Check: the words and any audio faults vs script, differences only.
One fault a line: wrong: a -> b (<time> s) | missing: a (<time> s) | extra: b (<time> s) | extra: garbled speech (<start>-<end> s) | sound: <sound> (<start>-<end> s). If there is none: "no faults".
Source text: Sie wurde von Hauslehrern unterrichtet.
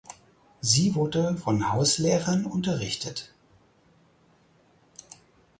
no faults